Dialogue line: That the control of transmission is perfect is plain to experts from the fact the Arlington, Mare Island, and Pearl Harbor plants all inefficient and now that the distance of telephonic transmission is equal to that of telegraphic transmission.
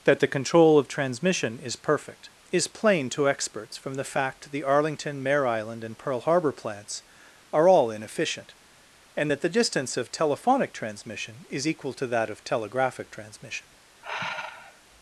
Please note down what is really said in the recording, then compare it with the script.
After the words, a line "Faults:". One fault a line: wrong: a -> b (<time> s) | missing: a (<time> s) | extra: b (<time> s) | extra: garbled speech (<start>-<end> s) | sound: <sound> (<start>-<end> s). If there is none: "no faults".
That the control of transmission is perfect is plain to experts from the fact the Arlington, Mare Island, and Pearl Harbor plants are all inefficient and that the distance of telephonic transmission is equal to that of telegraphic transmission.
Faults:
extra: are (7.5 s)
missing: now (9.3 s)
sound: sigh (14.0-14.8 s)